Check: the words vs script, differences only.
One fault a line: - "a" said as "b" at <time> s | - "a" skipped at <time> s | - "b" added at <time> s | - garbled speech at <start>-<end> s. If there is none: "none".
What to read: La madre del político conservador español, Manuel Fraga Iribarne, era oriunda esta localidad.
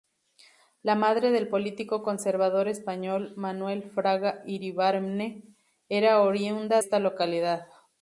none